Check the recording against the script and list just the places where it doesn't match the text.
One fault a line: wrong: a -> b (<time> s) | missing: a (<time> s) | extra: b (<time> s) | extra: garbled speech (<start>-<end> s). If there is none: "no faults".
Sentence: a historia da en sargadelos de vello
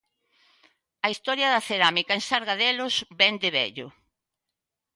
extra: cerámica (1.7 s)
extra: vén (3.2 s)